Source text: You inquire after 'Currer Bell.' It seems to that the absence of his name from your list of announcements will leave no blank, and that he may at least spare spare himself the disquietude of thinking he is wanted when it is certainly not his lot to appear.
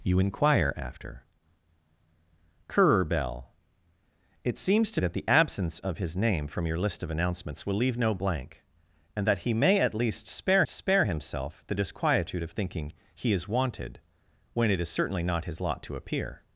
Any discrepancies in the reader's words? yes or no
no